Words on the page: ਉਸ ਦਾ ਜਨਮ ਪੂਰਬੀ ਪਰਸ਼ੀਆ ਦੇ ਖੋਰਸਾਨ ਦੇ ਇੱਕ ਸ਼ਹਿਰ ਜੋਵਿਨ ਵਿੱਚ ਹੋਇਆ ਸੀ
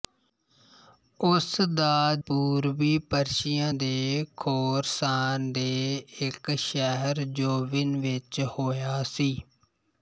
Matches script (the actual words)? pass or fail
fail